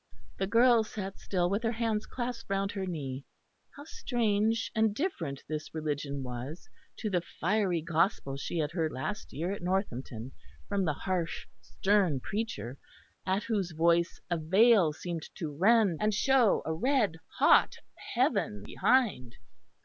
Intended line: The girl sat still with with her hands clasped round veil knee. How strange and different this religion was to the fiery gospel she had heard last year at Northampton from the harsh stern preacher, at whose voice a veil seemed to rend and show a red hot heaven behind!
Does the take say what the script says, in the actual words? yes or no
no